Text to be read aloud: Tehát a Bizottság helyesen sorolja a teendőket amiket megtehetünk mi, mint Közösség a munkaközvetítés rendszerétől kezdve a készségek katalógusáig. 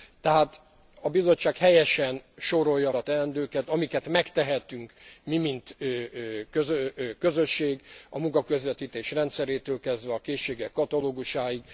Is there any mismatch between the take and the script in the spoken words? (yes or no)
no